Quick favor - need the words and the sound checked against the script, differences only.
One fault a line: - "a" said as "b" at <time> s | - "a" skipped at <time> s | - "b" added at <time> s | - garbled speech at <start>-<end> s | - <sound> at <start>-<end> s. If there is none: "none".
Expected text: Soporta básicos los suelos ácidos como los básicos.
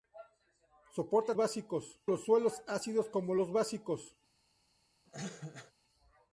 - cough at 5.1-5.7 s